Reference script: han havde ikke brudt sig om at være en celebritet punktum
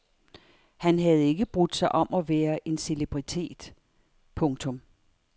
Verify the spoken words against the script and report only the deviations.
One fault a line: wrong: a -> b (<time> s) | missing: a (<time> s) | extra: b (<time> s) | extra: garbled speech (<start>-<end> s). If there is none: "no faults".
no faults